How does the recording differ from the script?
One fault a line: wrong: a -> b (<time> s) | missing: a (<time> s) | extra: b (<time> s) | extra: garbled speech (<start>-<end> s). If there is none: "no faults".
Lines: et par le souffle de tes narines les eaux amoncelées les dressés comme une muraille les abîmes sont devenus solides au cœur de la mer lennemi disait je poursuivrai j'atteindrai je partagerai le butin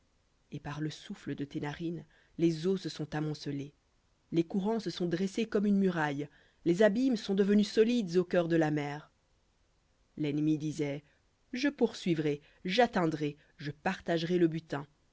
extra: se sont (2.8 s)
extra: courants se sont (4.4 s)